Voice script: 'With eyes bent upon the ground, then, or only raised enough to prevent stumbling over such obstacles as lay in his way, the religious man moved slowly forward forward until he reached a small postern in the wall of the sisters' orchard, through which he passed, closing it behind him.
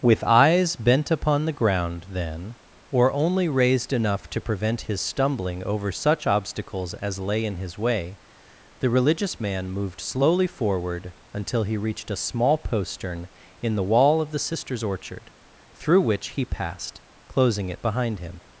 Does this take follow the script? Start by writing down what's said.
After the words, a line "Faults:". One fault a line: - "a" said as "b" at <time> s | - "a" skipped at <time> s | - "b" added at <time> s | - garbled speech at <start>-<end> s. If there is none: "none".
'With eyes bent upon the ground, then, or only raised enough to prevent his stumbling over such obstacles as lay in his way, the religious man moved slowly forward until he reached a small postern in the wall of the sisters' orchard, through which he passed, closing it behind him.
Faults:
- "his" added at 4.9 s
- "forward" skipped at 11.1 s